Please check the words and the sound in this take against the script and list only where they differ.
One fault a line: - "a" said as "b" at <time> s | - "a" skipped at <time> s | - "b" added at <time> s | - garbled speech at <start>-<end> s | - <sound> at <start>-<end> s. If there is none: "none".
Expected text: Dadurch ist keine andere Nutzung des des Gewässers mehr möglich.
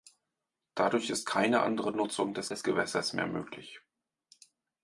none